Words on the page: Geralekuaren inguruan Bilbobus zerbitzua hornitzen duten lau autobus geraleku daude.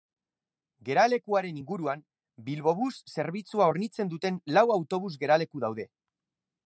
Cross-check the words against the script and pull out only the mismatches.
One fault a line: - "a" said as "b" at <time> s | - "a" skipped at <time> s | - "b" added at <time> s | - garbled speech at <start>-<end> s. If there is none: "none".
none